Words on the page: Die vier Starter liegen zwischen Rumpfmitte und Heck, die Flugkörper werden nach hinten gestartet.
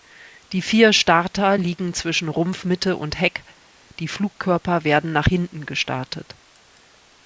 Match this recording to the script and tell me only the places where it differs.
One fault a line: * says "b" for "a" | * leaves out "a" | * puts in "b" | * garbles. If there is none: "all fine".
all fine